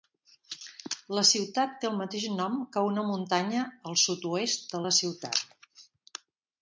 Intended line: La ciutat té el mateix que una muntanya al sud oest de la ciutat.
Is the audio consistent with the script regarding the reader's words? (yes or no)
no